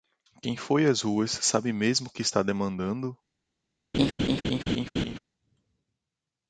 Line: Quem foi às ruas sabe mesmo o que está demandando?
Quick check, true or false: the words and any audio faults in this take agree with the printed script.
false